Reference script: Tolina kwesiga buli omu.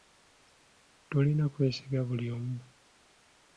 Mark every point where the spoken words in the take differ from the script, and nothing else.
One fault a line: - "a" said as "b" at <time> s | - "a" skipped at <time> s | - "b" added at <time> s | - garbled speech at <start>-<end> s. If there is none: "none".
none